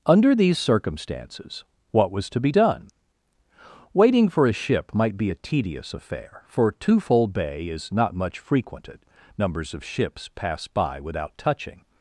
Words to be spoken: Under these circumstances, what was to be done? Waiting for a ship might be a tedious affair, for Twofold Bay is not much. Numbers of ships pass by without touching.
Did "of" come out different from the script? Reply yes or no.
no